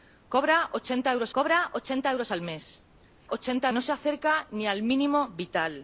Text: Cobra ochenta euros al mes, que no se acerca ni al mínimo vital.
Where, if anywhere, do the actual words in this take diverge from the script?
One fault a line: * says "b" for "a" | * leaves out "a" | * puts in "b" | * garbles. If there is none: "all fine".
* puts in "cobra ochenta euros"
* says "ochenta" for "que"